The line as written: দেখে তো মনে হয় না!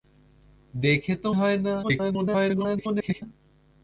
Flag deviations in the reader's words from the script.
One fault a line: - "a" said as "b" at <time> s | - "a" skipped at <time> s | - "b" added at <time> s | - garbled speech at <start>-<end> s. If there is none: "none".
- "মনে" skipped at 1.3 s
- garbled speech at 1.8-3.2 s